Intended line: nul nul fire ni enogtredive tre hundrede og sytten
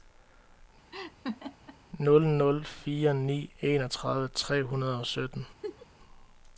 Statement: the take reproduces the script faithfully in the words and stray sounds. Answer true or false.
false